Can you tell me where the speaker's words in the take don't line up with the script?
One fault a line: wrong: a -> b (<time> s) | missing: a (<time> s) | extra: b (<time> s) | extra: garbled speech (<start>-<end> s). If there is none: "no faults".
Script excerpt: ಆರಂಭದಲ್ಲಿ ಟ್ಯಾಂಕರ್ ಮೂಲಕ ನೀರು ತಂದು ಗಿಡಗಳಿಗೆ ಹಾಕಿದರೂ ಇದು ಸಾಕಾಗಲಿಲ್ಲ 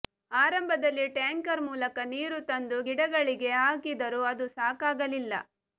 wrong: ಇದು -> ಅದು (4.3 s)